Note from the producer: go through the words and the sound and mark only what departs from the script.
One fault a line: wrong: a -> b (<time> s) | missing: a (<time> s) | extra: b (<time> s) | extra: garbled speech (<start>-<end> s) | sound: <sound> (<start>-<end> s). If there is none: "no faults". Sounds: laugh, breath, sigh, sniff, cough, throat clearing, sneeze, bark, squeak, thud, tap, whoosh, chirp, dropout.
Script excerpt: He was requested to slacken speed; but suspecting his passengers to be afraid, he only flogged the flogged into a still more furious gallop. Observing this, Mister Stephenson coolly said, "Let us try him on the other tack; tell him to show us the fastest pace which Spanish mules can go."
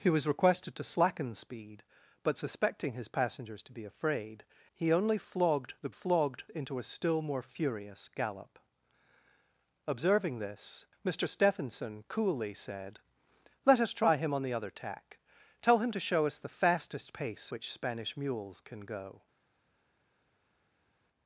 no faults